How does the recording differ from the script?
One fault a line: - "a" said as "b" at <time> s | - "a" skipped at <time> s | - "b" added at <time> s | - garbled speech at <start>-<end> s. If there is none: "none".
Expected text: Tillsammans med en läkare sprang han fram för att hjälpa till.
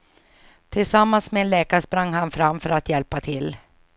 none